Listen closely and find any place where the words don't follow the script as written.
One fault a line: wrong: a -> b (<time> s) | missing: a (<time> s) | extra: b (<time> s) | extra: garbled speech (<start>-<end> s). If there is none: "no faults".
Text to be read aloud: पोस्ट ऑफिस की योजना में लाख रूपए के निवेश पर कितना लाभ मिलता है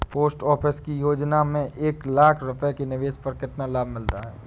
extra: एक (1.7 s)